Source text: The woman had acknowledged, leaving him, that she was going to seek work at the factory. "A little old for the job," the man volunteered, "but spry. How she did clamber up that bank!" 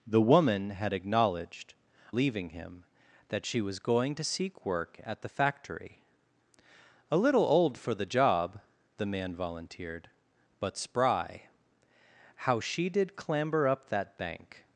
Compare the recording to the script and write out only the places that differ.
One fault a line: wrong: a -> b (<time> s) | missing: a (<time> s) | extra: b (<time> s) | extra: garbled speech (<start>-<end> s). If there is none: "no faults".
no faults